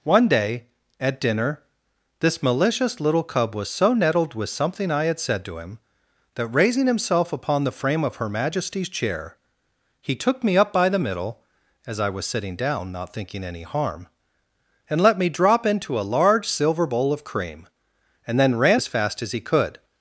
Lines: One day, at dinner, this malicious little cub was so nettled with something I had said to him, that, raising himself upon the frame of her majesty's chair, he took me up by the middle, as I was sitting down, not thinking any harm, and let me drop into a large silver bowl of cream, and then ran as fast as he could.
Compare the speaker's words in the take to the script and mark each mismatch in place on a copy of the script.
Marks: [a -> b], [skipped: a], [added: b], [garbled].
One day, at dinner, this malicious little cub was so nettled with something I had said to him, that, raising himself upon the frame of her majesty's chair, he took me up by the middle, as I was sitting down, not thinking any harm, and let me drop into a large silver bowl of cream, and then ran as fast as he could.